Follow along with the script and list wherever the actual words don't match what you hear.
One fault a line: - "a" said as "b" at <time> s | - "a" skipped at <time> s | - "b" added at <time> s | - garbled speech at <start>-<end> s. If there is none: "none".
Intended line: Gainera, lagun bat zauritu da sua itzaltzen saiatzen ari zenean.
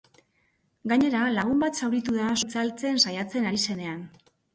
- "sua" skipped at 2.3 s